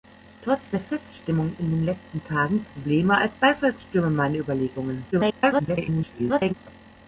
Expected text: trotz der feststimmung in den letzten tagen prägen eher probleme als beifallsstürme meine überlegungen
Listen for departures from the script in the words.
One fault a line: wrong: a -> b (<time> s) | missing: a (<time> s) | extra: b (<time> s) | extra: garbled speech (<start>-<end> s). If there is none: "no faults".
missing: prägen eher (2.6 s)
extra: garbled speech (5.1-6.5 s)